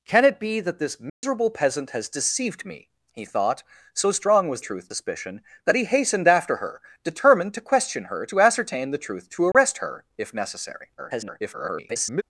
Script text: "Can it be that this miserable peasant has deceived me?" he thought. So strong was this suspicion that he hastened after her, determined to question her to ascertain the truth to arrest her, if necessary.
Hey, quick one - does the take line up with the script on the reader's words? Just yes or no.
no